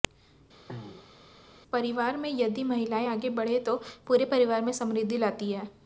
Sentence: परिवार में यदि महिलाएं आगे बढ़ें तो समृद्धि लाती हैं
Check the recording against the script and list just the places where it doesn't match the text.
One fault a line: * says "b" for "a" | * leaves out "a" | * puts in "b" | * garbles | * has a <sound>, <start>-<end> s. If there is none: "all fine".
* has a throat clearing, 0.7-1.2 s
* puts in "पूरे परिवार में"